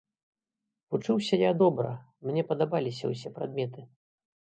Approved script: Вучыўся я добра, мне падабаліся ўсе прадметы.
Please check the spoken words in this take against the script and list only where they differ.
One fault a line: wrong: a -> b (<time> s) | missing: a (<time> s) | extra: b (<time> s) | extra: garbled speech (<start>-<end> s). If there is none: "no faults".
no faults